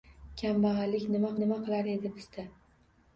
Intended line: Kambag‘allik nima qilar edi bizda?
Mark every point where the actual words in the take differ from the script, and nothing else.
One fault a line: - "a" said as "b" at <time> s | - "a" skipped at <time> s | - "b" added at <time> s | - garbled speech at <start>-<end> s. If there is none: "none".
- "nima" added at 1.4 s